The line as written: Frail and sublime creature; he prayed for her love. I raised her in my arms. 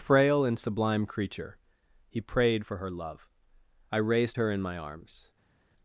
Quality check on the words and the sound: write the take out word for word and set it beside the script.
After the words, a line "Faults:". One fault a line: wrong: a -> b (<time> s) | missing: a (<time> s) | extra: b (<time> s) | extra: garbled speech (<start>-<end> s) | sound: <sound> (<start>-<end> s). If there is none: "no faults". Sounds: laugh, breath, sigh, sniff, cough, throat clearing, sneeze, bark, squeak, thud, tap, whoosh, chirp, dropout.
Frail and sublime creature; he prayed for her love. I raised her in my arms.
Faults:
no faults